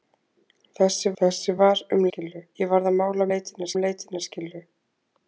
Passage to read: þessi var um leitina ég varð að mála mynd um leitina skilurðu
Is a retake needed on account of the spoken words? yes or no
yes